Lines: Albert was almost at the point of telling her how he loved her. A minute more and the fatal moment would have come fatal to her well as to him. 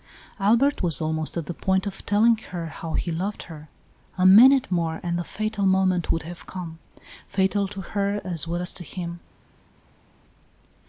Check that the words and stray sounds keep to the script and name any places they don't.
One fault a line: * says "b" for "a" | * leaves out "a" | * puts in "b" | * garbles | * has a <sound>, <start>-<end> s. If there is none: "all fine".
* puts in "as"